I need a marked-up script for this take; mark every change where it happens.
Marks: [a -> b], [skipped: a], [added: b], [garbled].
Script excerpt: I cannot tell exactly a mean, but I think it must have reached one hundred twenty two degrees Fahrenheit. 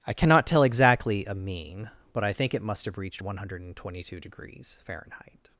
I cannot tell exactly a mean, but I think it must have reached one hundred twenty two degrees Fahrenheit.